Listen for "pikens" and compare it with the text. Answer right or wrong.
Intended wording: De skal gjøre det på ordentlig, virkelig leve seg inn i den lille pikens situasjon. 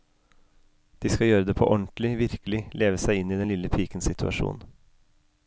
right